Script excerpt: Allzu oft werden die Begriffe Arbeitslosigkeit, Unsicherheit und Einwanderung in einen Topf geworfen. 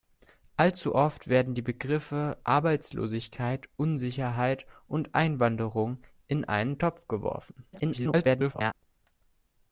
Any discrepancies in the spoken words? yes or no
yes